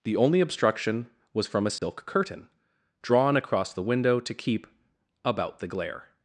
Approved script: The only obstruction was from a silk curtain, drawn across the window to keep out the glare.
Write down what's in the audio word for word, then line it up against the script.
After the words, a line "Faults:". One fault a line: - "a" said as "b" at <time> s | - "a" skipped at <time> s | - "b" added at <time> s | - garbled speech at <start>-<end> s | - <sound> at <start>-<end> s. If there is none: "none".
The only obstruction was from a silk curtain, drawn across the window to keep about the glare.
Faults:
- dropout at 1.8-1.8 s
- "out" said as "about" at 5.2 s